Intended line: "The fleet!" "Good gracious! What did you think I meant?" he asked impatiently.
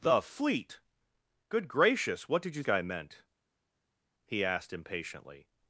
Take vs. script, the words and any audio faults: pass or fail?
fail